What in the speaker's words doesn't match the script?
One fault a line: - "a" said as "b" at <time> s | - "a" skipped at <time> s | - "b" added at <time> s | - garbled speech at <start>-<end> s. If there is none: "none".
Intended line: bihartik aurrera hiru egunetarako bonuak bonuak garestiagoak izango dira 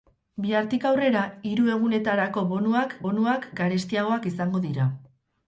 none